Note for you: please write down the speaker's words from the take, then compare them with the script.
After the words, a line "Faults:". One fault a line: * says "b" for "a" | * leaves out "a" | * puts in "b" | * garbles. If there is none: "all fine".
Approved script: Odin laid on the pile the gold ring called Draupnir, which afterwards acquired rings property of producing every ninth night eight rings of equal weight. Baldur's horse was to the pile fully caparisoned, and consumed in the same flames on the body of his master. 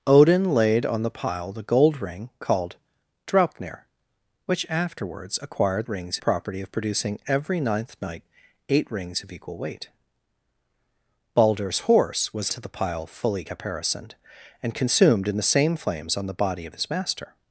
Odin laid on the pile the gold ring called Draupnir, which afterwards acquired rings property of producing every ninth night eight rings of equal weight. Baldur's horse was to the pile fully caparisoned, and consumed in the same flames on the body of his master.
Faults:
all fine